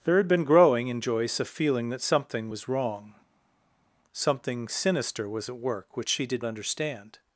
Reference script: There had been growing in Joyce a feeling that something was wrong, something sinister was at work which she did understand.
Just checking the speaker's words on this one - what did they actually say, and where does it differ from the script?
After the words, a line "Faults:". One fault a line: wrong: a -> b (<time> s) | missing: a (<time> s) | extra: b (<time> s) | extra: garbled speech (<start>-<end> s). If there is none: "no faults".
There had been growing in Joyce a feeling that something was wrong, something sinister was at work which she did understand.
Faults:
no faults